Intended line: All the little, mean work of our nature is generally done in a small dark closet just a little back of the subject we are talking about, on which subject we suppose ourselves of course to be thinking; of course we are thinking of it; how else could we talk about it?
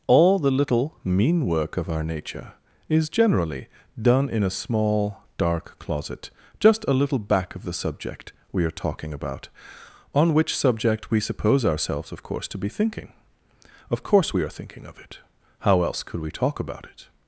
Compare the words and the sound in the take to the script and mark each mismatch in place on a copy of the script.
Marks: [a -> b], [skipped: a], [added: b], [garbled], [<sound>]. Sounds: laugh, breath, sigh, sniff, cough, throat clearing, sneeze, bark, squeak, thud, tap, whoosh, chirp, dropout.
All the little, mean work of our nature is generally done in a small dark closet just a little back of the subject we are talking about, on which subject we suppose ourselves of course to be thinking; of course we are thinking of it; how else could we talk about it?